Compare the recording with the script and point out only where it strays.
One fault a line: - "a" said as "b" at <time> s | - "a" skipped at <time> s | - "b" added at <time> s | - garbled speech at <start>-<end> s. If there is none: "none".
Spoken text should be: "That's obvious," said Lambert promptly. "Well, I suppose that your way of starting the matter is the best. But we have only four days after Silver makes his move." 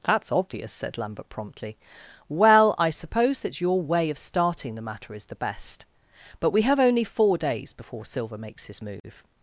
- "after" said as "before" at 7.8 s